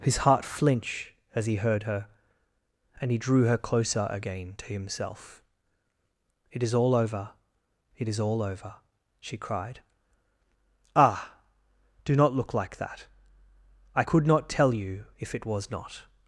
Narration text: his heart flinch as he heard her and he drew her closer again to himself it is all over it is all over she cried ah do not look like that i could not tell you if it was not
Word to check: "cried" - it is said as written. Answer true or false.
true